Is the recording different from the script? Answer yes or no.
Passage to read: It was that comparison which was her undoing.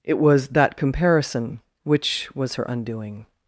no